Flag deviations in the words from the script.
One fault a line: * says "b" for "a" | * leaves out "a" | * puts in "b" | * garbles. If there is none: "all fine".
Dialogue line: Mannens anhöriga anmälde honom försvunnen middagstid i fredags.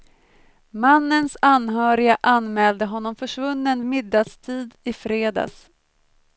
all fine